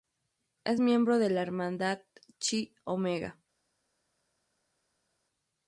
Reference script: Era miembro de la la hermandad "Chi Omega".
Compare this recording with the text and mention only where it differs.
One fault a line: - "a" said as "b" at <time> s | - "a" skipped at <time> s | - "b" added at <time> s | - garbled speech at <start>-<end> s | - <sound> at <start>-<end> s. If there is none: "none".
- "Era" said as "Es" at 0.6 s
- "la" skipped at 1.4 s